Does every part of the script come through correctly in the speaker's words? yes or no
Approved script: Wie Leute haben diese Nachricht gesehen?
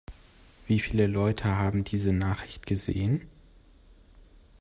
no